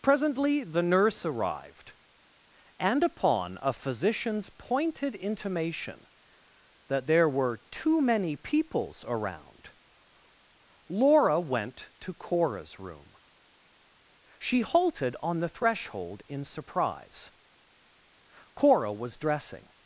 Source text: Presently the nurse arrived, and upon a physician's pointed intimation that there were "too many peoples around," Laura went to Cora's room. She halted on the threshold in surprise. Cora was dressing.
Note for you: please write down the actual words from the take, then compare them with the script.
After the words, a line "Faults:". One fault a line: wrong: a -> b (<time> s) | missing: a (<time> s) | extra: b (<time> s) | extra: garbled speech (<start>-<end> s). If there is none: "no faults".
Presently the nurse arrived, and upon a physician's pointed intimation that there were "too many peoples around," Laura went to Cora's room. She halted on the threshold in surprise. Cora was dressing.
Faults:
no faults